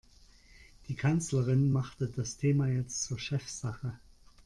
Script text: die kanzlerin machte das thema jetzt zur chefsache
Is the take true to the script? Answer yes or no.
yes